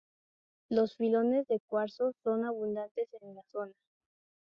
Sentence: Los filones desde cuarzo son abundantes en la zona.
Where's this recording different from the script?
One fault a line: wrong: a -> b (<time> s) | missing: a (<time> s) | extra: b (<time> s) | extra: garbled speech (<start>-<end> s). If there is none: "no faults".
wrong: desde -> de (1.5 s)